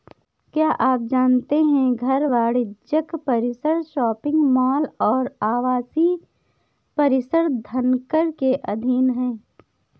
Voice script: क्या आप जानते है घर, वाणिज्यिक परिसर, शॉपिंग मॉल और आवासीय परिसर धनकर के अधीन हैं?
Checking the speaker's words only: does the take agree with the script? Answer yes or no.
yes